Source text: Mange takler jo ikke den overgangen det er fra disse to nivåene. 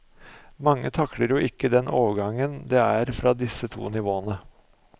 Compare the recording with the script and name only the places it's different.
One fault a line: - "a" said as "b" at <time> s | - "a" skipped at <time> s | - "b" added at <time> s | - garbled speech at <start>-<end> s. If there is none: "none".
none